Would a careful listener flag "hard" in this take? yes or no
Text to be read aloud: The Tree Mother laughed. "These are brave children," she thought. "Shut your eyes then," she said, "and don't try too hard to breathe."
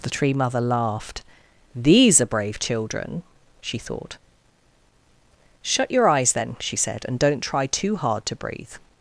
no